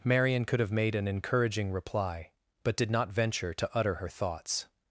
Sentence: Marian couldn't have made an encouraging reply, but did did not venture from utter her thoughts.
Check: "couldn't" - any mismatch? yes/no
yes